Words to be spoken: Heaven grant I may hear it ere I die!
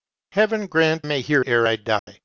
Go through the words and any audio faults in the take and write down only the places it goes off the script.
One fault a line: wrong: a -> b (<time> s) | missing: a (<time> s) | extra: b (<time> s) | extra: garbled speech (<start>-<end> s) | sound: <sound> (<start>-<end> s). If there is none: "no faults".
missing: I (1.1 s)
missing: it (1.4 s)
sound: dropout (2.0-2.1 s)